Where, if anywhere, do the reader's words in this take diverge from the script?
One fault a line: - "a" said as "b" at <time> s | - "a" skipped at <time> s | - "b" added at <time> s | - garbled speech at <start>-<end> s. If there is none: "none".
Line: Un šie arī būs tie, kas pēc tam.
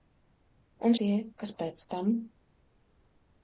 - "šie arī būs" skipped at 0.9 s